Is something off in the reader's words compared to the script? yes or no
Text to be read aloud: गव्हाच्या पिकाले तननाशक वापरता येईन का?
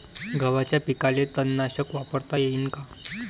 no